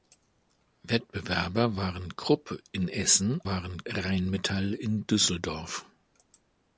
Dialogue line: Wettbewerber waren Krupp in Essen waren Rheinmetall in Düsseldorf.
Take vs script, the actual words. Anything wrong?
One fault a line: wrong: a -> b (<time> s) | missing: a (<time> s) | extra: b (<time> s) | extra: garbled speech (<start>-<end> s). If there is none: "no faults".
no faults